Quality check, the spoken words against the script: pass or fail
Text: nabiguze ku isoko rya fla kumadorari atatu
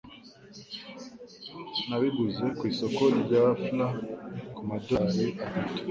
pass